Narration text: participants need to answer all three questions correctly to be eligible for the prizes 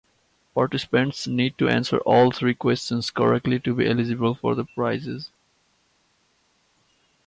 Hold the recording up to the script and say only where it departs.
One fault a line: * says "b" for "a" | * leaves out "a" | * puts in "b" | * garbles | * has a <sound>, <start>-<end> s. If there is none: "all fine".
all fine